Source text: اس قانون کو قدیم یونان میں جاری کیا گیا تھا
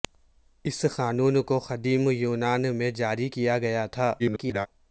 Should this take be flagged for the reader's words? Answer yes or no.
yes